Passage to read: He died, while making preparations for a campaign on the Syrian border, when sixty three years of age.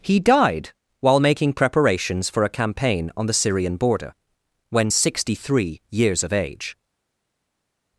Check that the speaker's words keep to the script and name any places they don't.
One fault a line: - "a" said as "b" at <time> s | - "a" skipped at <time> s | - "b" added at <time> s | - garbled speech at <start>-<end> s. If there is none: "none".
none